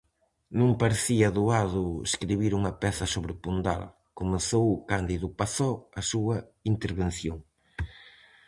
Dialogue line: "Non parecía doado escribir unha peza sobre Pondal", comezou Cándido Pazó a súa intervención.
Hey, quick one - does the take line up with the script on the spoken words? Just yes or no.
yes